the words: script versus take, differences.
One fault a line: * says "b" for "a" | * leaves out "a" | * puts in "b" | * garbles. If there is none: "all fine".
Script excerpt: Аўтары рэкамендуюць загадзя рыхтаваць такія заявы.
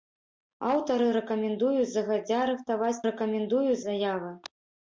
* says "рэкамендуюць" for "такія"